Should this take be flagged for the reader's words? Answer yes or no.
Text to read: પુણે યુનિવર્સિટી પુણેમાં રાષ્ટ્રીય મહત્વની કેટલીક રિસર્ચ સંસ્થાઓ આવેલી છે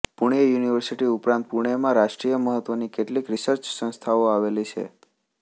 yes